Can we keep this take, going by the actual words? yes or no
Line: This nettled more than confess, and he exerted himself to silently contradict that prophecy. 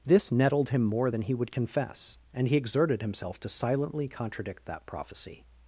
no